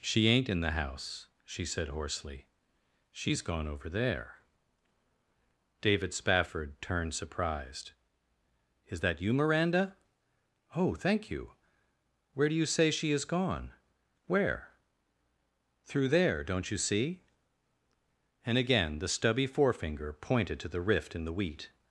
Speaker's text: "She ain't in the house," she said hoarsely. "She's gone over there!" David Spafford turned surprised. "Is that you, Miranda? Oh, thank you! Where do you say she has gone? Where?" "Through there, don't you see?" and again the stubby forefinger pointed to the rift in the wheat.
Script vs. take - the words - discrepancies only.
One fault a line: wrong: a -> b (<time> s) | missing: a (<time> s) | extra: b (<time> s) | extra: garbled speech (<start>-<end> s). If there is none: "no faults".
wrong: has -> is (13.1 s)